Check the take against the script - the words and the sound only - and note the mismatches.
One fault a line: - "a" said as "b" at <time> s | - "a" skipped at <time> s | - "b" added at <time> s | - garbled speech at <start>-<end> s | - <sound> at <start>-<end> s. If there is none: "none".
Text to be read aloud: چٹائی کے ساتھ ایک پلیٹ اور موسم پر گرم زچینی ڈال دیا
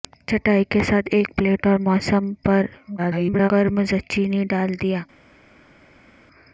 - garbled speech at 3.0-3.5 s